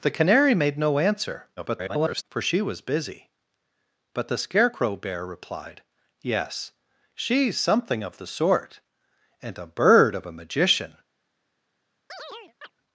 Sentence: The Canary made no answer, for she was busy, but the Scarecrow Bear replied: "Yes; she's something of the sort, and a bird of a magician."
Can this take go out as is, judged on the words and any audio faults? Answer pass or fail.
fail